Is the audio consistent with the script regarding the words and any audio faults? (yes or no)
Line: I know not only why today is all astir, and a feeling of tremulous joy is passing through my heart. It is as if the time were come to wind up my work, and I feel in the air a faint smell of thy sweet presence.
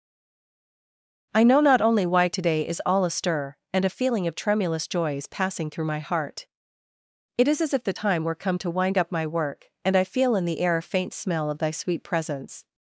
yes